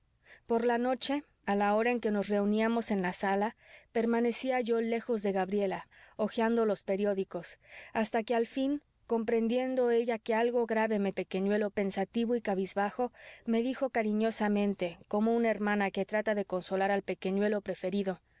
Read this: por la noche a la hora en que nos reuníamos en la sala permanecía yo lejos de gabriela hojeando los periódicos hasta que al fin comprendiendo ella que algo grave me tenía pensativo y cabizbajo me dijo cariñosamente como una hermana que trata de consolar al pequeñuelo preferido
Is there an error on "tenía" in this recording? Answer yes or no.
yes